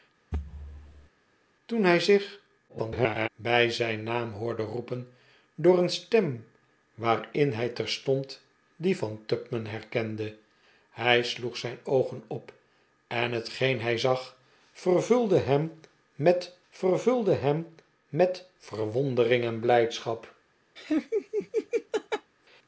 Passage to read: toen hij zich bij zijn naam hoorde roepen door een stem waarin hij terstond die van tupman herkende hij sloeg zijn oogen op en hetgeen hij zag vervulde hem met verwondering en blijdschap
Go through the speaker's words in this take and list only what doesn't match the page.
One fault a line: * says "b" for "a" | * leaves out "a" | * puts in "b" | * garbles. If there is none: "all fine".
* garbles
* puts in "vervulde hem met"